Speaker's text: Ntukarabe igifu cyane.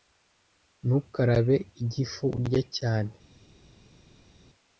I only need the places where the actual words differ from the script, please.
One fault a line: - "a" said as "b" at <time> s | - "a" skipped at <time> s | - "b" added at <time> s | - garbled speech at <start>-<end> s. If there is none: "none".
- "urya" added at 2.4 s